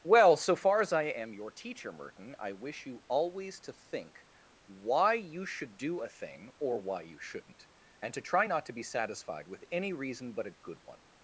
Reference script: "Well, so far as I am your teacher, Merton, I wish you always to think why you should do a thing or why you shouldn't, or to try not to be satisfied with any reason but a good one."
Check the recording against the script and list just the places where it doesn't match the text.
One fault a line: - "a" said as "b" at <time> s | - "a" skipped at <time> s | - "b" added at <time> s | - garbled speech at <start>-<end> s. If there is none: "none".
- "or" said as "and" at 8.0 s